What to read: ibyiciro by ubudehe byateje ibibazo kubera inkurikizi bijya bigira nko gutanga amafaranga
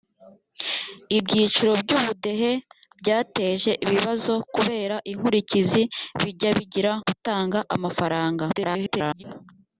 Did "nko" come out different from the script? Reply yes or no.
yes